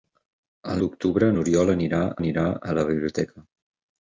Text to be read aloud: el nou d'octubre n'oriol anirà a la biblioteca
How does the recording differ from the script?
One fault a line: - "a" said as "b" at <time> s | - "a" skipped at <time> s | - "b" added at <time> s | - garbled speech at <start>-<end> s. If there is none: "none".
- "nou" skipped at 0.8 s
- "anirà" added at 2.2 s